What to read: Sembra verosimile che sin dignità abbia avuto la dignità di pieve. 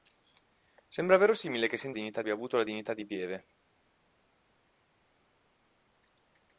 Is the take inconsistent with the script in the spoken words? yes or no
no